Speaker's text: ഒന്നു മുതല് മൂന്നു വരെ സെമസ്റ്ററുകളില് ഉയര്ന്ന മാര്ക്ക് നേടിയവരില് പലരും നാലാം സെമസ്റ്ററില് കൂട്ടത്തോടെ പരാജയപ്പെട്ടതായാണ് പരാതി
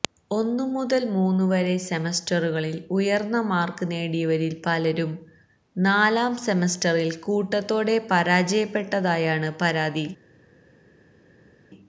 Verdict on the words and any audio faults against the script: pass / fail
pass